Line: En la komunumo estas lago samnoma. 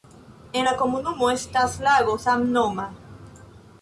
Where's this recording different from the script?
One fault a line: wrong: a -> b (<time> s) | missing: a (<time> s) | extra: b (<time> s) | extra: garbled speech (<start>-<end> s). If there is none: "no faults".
no faults